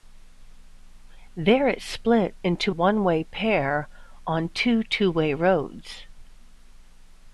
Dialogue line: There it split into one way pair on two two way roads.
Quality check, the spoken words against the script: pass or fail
pass